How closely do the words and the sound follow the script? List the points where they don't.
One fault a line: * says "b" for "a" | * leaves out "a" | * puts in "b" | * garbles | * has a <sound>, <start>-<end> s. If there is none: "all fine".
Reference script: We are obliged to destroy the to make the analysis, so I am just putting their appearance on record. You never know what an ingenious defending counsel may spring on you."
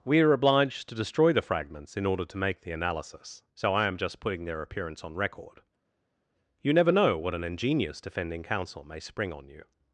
* puts in "fragments in order"